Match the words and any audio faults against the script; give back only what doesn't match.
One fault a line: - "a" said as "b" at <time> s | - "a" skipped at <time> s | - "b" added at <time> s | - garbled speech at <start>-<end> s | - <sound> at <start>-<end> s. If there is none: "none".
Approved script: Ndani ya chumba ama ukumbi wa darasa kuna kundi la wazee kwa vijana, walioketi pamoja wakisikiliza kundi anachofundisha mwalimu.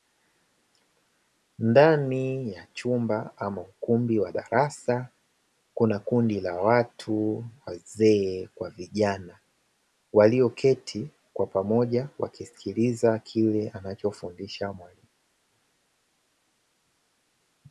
- "watu" added at 6.6 s
- "kwa" added at 11.3 s
- "kundi" said as "kile" at 13.2 s